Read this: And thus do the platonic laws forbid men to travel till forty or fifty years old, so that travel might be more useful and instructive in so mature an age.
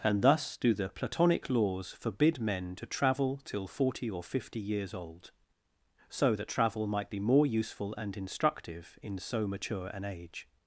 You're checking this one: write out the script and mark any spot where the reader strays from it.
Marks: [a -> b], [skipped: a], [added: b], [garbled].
And thus do the platonic laws forbid men to travel till forty or fifty years old, so that travel might be more useful and instructive in so mature an age.